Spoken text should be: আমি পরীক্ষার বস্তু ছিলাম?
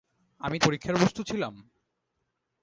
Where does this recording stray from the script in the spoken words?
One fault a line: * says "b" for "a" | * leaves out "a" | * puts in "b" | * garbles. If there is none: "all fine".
all fine